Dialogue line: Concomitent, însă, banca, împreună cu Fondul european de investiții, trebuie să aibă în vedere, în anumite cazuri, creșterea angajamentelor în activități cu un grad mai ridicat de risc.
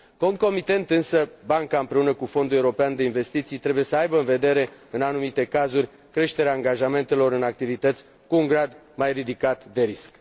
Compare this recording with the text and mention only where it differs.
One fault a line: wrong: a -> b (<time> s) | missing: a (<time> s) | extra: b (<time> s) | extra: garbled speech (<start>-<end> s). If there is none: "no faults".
no faults